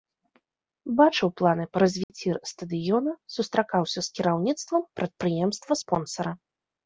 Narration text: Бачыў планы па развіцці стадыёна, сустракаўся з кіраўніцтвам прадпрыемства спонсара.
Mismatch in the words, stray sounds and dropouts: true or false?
true